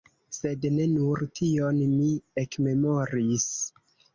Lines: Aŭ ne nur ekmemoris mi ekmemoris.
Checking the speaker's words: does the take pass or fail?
fail